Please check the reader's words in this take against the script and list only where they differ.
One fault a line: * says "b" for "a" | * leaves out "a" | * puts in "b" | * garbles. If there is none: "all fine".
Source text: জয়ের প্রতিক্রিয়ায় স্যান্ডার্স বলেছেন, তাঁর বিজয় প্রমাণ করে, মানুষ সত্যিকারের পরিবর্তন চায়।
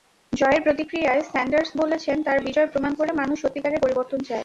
all fine